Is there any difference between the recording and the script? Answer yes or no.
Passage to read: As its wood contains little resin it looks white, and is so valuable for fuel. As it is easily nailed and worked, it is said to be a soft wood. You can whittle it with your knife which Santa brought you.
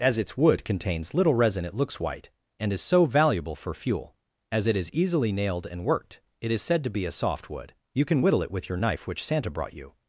no